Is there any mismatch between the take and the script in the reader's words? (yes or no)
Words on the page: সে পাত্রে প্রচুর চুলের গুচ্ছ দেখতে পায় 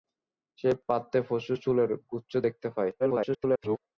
yes